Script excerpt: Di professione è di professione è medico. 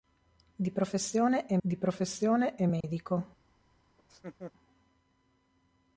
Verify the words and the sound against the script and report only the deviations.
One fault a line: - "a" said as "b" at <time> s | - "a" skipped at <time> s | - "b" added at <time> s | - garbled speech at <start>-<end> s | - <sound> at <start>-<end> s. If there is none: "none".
- dropout at 2.8-2.8 s
- laugh at 4.0-4.5 s